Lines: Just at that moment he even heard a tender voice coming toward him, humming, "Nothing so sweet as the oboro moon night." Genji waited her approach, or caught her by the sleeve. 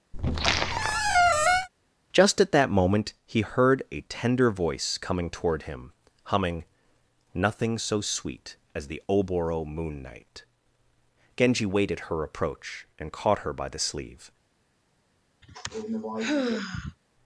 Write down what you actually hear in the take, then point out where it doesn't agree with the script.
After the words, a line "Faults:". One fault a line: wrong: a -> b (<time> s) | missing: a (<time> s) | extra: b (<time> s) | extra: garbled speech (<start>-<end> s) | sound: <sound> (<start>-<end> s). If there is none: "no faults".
Just at that moment he heard a tender voice coming toward him, humming, "Nothing so sweet as the oboro moon night." Genji waited her approach, and caught her by the sleeve.
Faults:
sound: squeak (0.1-1.7 s)
missing: even (3.4 s)
wrong: or -> and (13.0 s)
sound: sigh (15.4-17.0 s)